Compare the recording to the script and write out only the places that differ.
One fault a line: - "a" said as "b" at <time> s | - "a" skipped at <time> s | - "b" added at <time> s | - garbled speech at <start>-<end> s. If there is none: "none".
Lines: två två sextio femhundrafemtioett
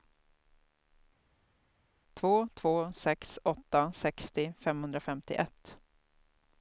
- "sex åtta" added at 2.9 s